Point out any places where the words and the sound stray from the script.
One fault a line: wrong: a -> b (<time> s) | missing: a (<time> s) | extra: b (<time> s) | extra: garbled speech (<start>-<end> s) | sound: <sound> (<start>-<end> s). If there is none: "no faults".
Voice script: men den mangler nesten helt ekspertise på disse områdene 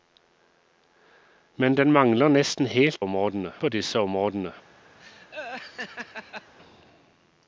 wrong: ekspertise -> områdene (3.0 s)
sound: laugh (5.0-6.5 s)